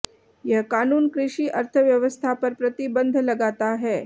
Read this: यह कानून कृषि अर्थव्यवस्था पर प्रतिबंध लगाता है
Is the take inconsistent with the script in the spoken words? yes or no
no